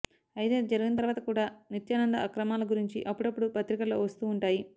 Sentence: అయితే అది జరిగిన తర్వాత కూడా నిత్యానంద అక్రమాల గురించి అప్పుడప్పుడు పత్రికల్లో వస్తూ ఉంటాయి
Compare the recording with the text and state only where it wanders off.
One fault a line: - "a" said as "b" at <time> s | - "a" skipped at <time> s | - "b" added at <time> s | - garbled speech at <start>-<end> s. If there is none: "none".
none